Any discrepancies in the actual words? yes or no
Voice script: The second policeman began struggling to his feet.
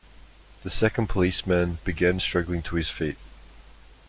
no